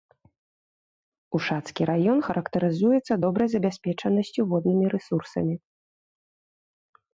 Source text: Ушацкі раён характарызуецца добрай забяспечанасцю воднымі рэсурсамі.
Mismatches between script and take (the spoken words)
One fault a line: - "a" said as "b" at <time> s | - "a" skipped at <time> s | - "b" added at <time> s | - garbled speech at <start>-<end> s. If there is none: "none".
none